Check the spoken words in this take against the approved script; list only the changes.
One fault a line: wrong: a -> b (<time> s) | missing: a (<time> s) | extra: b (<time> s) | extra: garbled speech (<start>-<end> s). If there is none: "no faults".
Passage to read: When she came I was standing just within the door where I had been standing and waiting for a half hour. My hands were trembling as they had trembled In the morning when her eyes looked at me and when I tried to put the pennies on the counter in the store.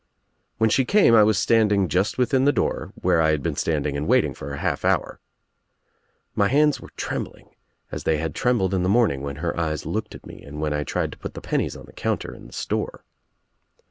no faults